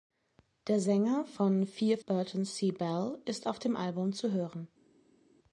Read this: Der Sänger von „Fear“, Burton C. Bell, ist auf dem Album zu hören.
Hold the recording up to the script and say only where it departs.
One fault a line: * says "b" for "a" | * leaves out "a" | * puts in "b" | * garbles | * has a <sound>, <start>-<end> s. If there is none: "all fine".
all fine